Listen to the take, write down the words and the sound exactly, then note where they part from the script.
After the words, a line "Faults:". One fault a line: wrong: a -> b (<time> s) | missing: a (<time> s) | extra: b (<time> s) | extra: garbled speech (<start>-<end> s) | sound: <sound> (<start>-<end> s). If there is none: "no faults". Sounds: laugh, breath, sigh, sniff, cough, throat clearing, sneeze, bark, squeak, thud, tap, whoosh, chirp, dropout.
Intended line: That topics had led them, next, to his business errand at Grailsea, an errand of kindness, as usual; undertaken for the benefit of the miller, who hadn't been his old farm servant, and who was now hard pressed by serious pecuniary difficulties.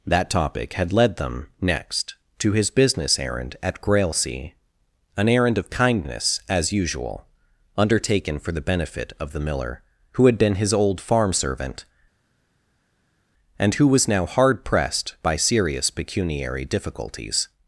That topic had led them, next, to his business errand at Grailsea, an errand of kindness, as usual; undertaken for the benefit of the miller, who had been his old farm servant, and who was now hard pressed by serious pecuniary difficulties.
Faults:
wrong: topics -> topic (0.3 s)
wrong: hadn't -> had (10.2 s)